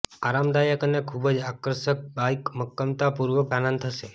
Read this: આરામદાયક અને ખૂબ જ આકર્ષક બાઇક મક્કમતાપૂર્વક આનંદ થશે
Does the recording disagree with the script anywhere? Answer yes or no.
no